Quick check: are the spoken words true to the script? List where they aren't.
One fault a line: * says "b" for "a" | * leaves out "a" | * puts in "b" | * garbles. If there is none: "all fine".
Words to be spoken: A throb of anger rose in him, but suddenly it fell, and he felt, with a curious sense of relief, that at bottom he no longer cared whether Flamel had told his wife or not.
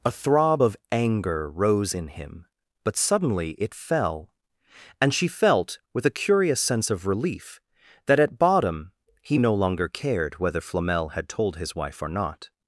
* says "she" for "he"